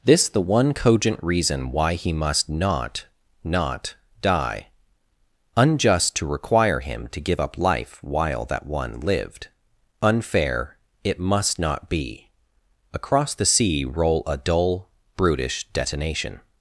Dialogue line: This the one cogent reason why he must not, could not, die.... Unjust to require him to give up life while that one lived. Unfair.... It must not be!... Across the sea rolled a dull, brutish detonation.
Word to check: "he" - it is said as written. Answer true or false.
true